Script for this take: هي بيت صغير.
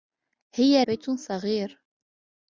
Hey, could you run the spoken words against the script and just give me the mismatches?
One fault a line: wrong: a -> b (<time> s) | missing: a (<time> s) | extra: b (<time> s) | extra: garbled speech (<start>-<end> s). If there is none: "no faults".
no faults